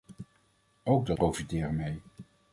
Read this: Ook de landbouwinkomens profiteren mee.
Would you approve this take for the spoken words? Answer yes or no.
no